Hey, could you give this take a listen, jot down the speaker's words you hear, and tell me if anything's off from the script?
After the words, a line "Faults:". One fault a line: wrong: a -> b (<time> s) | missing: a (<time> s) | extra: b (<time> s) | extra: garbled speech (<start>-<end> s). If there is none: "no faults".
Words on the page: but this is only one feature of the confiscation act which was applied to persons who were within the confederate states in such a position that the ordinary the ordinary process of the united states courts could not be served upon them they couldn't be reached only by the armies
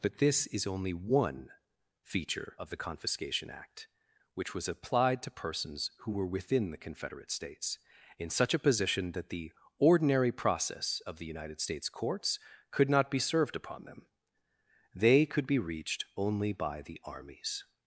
but this is only one feature of the confiscation act which was applied to persons who were within the confederate states in such a position that the ordinary process of the united states courts could not be served upon them they could be reached only by the armies
Faults:
missing: the ordinary (10.3 s)
wrong: couldn't -> could (15.3 s)